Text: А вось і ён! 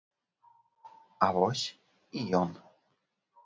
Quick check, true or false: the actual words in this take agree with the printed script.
true